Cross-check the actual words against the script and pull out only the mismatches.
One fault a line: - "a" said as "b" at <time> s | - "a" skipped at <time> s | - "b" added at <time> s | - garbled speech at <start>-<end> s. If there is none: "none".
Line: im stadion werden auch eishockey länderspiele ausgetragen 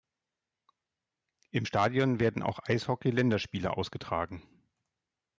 none